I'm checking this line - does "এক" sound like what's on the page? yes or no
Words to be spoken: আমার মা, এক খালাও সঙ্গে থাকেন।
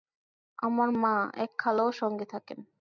yes